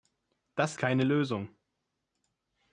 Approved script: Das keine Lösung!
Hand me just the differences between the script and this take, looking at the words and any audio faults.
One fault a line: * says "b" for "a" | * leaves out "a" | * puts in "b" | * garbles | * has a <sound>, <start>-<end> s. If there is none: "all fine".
all fine